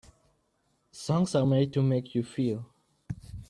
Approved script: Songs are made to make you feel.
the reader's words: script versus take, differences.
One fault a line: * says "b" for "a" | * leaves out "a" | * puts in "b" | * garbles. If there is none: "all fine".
all fine